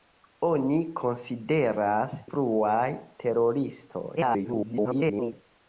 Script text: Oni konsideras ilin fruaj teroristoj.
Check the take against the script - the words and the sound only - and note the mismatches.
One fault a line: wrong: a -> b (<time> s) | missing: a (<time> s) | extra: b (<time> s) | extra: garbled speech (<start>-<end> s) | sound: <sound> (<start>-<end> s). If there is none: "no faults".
missing: ilin (2.2 s)
extra: garbled speech (4.2-5.3 s)